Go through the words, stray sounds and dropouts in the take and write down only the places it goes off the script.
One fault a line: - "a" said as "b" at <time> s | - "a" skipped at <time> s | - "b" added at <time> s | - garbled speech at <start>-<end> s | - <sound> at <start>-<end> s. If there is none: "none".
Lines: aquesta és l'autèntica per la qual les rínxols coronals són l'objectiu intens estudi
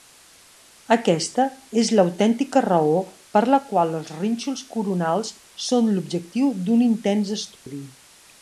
- "raó" added at 2.7 s
- "les" said as "els" at 4.0 s
- "d'un" added at 6.7 s
- dropout at 7.6-7.7 s